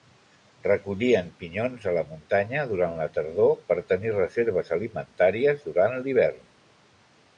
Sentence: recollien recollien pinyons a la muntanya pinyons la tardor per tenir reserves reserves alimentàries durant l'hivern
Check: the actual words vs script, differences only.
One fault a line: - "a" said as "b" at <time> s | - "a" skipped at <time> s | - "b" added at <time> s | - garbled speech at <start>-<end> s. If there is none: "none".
- "recollien" skipped at 1.3 s
- "pinyons" said as "durant" at 2.7 s
- "reserves" skipped at 4.7 s